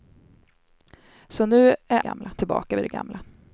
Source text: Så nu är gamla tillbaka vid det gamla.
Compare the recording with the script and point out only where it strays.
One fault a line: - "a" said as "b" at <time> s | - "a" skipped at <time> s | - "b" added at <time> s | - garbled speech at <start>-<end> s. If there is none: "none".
none